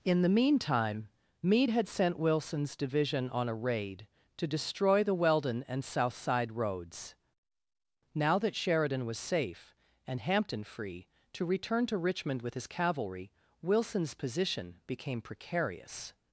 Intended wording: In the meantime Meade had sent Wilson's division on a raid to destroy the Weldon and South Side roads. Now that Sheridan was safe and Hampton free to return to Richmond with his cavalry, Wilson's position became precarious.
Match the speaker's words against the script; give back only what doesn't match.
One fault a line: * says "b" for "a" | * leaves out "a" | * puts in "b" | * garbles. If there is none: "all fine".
all fine